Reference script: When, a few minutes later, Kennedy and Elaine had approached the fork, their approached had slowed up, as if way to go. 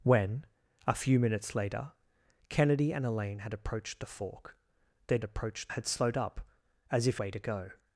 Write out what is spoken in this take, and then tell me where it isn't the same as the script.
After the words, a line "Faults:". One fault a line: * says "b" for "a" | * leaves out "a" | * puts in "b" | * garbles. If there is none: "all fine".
When, a few minutes later, Kennedy and Elaine had approached the fork, their approached had slowed up, as if way to go.
Faults:
all fine